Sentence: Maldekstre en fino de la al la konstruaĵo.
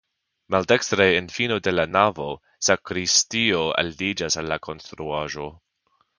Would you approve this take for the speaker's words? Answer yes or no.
no